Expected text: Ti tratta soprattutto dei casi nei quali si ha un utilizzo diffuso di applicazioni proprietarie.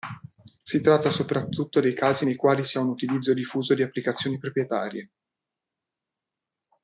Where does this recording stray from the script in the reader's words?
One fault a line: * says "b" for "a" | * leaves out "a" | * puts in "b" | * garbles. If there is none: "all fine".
* says "Si" for "Ti"